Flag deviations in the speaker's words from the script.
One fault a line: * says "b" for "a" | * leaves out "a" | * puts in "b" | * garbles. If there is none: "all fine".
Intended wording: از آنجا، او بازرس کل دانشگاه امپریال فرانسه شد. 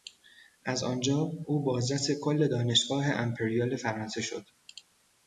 all fine